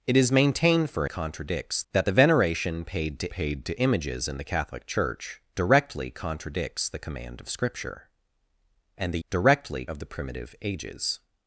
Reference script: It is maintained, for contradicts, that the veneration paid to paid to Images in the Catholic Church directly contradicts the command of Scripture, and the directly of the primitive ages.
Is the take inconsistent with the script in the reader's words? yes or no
no